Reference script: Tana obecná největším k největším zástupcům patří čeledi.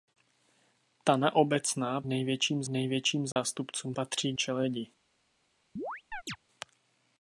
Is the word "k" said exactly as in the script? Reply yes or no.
yes